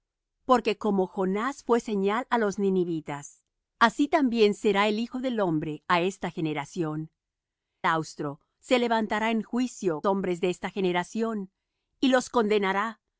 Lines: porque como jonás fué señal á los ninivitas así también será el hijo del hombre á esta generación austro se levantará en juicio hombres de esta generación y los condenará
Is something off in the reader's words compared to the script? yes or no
no